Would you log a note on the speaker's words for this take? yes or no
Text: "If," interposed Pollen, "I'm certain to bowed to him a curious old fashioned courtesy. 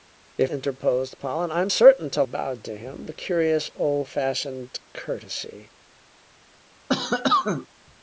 no